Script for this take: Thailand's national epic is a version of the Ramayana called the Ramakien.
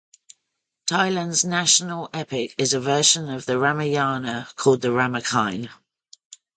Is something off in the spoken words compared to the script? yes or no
no